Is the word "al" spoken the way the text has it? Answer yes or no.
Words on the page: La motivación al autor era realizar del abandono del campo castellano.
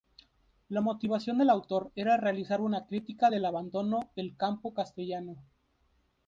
no